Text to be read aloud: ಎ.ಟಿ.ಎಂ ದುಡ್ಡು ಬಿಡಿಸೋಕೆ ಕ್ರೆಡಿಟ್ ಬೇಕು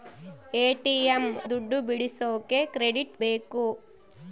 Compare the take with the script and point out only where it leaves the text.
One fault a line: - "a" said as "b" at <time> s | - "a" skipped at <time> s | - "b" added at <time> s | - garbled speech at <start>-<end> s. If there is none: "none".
none